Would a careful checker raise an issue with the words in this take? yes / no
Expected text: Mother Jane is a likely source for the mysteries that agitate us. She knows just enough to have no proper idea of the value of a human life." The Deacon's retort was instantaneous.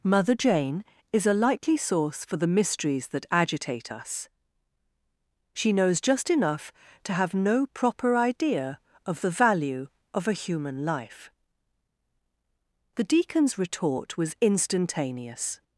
no